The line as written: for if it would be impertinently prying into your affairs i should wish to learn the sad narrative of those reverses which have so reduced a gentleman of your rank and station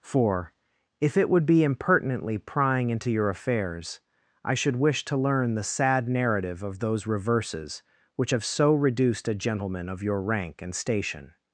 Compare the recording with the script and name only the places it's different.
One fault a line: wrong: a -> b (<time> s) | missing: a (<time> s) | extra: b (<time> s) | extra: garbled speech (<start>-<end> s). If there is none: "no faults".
no faults